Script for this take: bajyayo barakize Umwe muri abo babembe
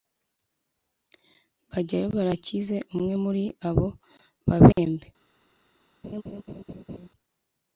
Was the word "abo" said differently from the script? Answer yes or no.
no